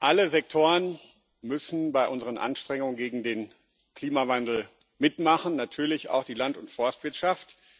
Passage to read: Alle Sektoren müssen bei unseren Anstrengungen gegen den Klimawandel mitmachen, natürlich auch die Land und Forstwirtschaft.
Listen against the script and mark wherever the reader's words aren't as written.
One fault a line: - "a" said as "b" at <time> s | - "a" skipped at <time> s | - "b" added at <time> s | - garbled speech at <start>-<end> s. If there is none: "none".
none